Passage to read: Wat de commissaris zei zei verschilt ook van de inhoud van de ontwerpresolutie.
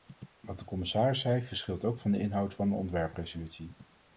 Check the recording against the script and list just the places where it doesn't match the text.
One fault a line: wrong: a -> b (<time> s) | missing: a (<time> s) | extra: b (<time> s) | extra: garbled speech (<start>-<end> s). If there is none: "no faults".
missing: zei (1.4 s)